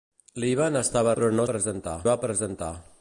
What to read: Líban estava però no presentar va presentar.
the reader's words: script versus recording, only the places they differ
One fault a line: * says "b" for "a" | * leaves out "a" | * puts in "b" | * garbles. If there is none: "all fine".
all fine